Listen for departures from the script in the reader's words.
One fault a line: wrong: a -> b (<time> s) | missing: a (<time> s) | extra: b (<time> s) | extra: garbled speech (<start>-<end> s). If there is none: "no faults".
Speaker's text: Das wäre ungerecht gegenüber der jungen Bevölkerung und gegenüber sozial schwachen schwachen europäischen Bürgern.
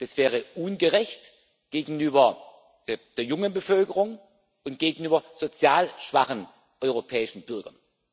missing: schwachen (6.5 s)